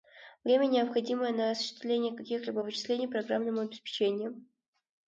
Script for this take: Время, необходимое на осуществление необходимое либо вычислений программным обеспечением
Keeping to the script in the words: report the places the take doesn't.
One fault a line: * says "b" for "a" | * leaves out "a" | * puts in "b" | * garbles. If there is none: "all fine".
* says "каких" for "необходимое"